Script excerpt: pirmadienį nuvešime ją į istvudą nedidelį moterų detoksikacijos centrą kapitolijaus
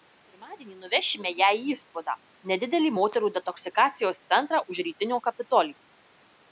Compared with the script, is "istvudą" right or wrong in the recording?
right